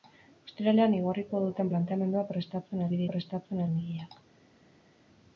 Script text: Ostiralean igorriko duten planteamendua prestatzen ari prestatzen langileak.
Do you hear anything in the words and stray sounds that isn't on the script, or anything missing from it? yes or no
no